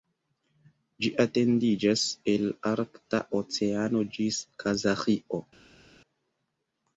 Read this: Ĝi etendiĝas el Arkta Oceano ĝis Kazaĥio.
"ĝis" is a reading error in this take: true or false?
false